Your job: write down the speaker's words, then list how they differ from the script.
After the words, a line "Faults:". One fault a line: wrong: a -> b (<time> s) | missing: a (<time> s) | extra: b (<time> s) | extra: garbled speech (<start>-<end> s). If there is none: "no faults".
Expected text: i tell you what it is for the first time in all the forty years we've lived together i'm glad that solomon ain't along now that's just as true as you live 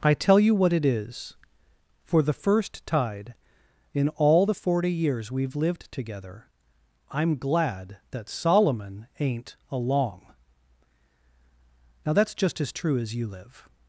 i tell you what it is for the first tide in all the forty years we've lived together i'm glad that solomon ain't along now that's just as true as you live
Faults:
wrong: time -> tide (2.9 s)